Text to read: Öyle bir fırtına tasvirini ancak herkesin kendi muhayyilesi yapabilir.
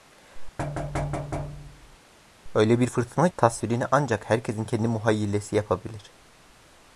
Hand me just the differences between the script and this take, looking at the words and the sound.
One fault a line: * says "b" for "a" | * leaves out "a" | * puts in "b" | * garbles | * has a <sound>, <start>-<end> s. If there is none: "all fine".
* has a thud, 0.6-2.0 s